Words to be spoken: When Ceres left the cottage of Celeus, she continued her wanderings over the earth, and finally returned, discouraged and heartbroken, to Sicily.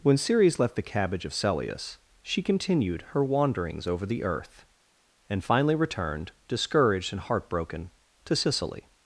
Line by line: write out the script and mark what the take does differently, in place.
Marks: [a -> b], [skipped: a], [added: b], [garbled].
When Ceres left the [cottage -> cabbage] of Celeus, she continued her wanderings over the earth, and finally returned, discouraged and heartbroken, to Sicily.